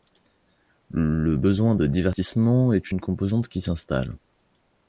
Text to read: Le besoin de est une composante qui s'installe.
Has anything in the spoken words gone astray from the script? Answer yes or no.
yes